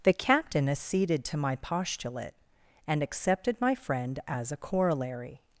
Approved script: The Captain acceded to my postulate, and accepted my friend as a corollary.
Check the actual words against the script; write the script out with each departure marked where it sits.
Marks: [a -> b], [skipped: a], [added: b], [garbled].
The Captain acceded to my postulate, and accepted my friend as a corollary.